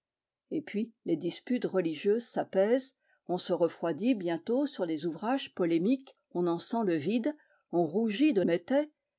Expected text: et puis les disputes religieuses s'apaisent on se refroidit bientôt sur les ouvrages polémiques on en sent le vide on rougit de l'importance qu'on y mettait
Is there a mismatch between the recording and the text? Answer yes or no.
yes